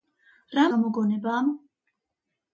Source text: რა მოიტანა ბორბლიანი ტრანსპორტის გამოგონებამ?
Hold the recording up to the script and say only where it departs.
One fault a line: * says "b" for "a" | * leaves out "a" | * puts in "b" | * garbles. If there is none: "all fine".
* leaves out "მოიტანა ბორბლიანი ტრანსპორტის"